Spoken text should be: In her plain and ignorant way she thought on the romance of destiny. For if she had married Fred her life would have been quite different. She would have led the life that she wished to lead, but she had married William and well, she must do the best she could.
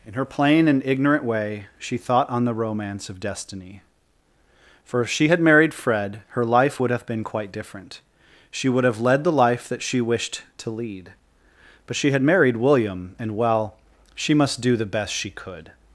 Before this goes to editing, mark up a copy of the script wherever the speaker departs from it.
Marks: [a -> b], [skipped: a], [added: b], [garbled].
In her plain and ignorant way she thought on the romance of destiny. For if she had married Fred her life would have been quite different. She would have led the life that she wished to lead, but she had married William and well, she must do the best she could.